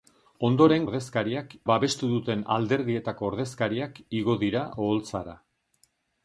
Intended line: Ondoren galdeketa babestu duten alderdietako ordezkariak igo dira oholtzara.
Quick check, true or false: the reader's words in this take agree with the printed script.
false